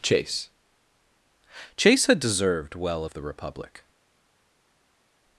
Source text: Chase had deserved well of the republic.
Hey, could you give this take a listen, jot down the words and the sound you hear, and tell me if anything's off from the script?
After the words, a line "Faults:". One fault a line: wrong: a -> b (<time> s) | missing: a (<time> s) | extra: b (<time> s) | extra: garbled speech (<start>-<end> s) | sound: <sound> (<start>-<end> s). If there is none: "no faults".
Chase chase had deserved well of the republic.
Faults:
extra: chase (1.8 s)